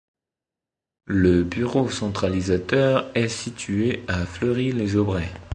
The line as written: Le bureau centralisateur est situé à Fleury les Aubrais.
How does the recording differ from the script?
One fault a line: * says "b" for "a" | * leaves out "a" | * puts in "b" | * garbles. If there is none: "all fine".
all fine